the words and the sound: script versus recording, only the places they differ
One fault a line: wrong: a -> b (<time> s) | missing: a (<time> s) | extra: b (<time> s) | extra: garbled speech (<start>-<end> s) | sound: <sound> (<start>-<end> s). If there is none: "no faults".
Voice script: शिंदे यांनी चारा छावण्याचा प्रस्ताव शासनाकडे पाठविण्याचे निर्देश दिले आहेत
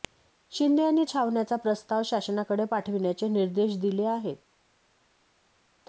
missing: चारा (1.0 s)